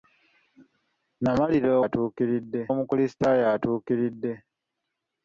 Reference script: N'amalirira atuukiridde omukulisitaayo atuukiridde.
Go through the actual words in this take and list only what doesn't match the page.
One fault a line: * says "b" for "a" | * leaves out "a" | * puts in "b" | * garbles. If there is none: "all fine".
all fine